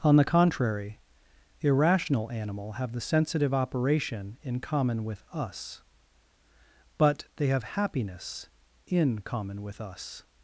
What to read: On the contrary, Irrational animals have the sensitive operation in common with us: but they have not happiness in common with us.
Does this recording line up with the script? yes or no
no